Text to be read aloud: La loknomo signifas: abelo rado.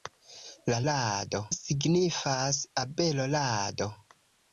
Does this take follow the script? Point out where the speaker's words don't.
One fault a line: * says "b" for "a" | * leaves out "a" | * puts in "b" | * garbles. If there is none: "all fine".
* says "rado" for "loknomo"